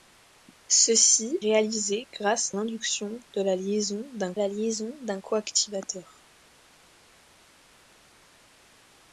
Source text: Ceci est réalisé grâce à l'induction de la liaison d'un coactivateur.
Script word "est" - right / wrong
wrong